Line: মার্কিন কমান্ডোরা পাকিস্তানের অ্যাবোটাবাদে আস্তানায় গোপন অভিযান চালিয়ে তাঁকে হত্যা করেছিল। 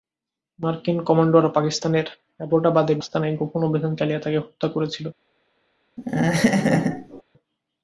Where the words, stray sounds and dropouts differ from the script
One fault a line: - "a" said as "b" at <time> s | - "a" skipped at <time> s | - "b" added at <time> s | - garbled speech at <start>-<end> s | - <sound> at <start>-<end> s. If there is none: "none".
- laugh at 6.0-7.2 s